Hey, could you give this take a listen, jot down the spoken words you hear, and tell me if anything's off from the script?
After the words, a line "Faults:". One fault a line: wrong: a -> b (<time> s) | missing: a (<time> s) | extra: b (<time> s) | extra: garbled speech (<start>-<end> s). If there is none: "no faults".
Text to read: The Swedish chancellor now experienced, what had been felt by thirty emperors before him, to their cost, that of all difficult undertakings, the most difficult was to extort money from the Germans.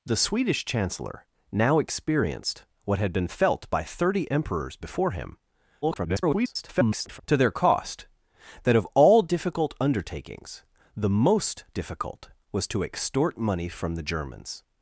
The Swedish chancellor now experienced, what had been felt by thirty emperors before him, [garbled] to their cost, that of all difficult undertakings, the most difficult was to extort money from the Germans.
Faults:
extra: garbled speech (5.8-7.2 s)